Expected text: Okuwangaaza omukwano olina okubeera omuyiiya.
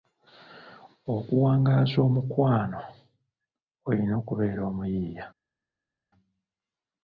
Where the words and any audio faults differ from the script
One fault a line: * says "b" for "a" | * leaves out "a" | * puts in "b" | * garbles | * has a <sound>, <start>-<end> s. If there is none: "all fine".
all fine